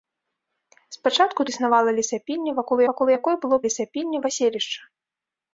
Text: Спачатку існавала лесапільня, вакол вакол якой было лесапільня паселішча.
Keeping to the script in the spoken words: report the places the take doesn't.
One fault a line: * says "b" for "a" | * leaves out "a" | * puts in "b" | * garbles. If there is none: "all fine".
all fine